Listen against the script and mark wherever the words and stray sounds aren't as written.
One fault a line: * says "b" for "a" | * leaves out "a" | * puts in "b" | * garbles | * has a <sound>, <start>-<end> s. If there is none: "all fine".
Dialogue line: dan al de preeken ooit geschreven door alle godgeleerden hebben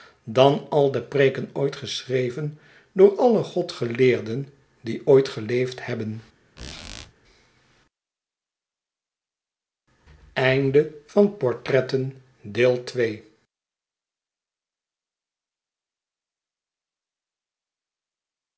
* puts in "die ooit geleefd"
* has a squeak, 6.6-7.1 s